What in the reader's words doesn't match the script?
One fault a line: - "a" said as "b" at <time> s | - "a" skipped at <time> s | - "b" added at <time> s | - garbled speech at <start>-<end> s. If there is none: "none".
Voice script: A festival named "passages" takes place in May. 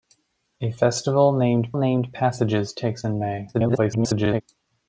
- "named" added at 1.7 s
- "place" skipped at 3.0 s
- garbled speech at 3.5-4.4 s